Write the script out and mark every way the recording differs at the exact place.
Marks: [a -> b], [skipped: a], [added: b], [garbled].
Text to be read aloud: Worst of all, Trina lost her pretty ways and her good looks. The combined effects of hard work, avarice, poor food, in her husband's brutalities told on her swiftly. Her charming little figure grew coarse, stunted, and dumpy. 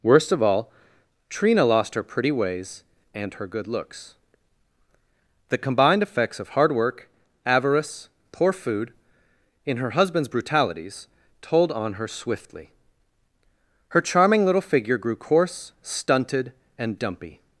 Worst of all, Trina lost her pretty ways and her good looks. The combined effects of hard work, avarice, poor food, in her husband's brutalities told on her swiftly. Her charming little figure grew coarse, stunted, and dumpy.